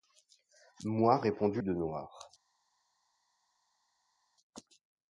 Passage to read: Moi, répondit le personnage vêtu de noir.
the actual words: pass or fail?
fail